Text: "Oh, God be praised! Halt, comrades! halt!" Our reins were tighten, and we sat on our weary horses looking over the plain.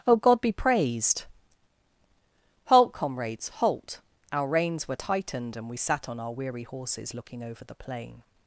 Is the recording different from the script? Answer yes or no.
yes